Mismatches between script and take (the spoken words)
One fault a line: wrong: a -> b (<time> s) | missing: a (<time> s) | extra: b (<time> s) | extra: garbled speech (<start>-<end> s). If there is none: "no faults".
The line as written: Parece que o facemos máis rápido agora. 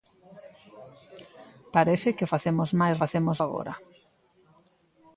wrong: rápido -> facemos (3.0 s)